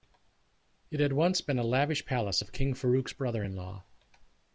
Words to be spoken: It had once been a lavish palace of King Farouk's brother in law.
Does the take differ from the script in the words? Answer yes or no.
no